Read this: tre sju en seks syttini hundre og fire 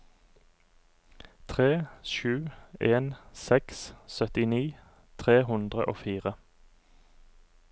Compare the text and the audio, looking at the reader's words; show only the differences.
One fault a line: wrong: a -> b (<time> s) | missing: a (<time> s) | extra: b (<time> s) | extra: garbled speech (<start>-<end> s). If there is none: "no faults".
extra: tre (5.2 s)